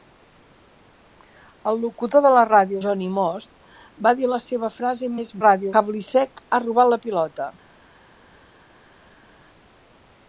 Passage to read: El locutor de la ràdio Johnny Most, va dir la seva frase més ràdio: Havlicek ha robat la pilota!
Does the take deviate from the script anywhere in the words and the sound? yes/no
no